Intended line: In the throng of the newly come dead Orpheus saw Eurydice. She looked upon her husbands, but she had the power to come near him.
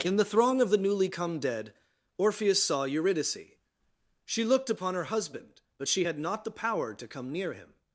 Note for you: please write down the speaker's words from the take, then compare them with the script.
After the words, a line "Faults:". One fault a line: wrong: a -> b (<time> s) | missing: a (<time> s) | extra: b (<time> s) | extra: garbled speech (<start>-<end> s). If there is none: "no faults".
In the throng of the newly come dead Orpheus saw Eurydice. She looked upon her husband, but she had not the power to come near him.
Faults:
wrong: husbands -> husband (5.0 s)
extra: not (6.2 s)